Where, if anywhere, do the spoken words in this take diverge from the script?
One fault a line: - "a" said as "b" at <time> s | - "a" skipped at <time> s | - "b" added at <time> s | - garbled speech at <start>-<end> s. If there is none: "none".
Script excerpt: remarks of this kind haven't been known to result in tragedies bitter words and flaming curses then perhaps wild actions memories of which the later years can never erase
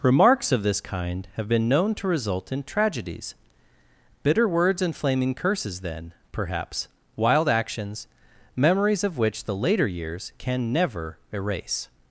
- "haven't" said as "have" at 1.3 s